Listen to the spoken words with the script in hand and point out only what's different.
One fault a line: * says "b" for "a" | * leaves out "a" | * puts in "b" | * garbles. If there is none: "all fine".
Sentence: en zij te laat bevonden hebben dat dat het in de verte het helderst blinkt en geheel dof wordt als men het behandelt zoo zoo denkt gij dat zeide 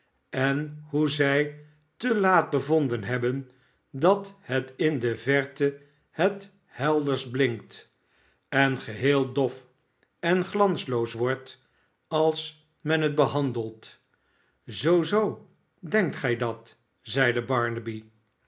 * puts in "hoe"
* leaves out "dat"
* puts in "en glansloos"